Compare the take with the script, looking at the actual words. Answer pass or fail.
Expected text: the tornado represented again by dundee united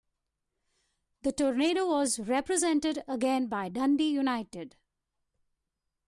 fail